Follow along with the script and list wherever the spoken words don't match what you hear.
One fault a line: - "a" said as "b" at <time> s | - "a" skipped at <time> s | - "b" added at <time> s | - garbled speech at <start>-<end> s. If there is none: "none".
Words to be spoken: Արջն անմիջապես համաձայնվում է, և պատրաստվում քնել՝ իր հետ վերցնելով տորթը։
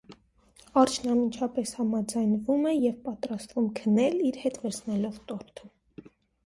none